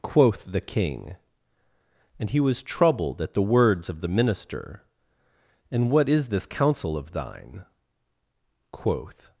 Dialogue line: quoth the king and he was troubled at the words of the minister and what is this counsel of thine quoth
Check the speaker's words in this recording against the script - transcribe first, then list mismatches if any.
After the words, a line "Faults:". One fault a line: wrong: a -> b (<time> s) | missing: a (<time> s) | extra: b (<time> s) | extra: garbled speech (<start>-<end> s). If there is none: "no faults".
quoth the king and he was troubled at the words of the minister and what is this counsel of thine quoth
Faults:
no faults